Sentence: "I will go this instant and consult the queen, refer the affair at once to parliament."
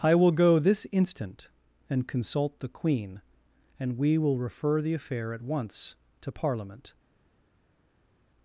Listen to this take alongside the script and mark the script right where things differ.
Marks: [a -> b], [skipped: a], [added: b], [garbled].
"I will go this instant and consult the queen, [added: and we will] refer the affair at once to parliament."